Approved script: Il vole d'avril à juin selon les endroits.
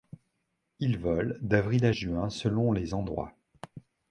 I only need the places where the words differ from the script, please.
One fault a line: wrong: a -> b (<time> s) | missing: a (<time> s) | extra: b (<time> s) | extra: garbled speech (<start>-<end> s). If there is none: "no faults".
no faults